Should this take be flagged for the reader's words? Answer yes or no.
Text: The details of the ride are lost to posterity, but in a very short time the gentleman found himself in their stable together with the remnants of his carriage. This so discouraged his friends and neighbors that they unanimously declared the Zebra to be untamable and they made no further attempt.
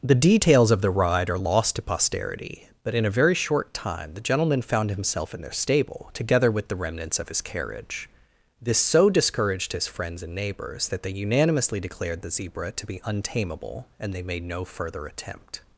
no